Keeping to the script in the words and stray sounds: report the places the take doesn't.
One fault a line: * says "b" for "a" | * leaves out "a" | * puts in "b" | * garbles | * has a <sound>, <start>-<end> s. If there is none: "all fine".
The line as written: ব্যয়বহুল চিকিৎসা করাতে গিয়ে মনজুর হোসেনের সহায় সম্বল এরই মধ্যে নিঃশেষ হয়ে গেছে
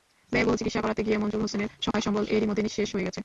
* has a dropout, 1.9-1.9 s